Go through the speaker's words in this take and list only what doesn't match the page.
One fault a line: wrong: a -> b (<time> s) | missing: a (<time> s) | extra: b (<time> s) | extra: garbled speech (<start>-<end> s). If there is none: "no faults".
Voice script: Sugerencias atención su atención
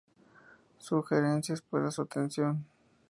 wrong: atención -> para (1.6 s)